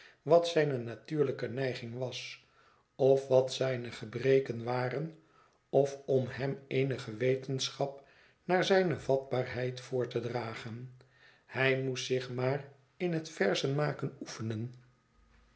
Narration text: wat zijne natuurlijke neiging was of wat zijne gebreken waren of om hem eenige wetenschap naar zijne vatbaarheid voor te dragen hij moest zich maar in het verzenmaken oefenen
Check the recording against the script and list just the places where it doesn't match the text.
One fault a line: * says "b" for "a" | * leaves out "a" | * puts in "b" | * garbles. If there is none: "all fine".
all fine